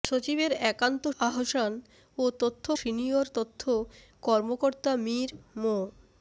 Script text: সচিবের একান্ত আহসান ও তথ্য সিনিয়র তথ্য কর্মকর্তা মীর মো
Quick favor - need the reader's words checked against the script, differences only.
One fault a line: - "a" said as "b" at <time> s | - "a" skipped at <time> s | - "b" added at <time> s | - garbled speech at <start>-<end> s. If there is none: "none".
none